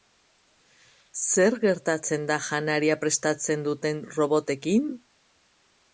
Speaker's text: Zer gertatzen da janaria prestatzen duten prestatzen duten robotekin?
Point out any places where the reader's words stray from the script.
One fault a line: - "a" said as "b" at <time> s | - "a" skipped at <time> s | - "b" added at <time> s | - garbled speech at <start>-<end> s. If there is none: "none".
- "prestatzen duten" skipped at 4.0 s